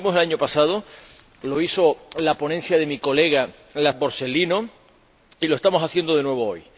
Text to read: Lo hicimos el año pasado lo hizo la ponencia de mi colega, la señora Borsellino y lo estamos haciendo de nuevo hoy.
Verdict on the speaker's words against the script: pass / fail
fail